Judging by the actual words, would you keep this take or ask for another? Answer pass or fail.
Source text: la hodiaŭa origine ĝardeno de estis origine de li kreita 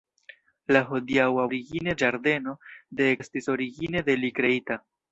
pass